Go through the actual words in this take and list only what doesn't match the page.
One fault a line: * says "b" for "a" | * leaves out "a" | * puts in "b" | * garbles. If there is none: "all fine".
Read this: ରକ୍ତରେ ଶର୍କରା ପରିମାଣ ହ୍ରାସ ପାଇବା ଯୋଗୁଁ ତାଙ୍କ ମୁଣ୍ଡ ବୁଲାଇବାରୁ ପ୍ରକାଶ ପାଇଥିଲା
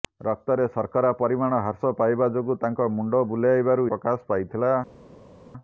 all fine